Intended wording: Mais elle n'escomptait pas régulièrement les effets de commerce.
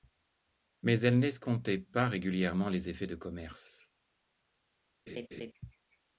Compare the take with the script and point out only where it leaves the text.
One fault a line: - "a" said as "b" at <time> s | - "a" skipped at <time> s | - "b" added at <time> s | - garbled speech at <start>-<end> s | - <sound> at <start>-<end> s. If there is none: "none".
- laugh at 5.1-5.5 s